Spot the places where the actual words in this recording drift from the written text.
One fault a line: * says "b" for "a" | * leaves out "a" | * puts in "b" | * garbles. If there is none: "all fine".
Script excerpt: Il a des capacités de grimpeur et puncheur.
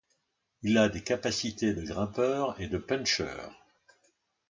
* puts in "de"